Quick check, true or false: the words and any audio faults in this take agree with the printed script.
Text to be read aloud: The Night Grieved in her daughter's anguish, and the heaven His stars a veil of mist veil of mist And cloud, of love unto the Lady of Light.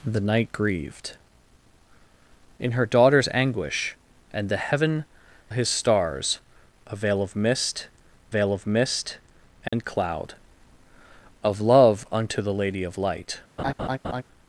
false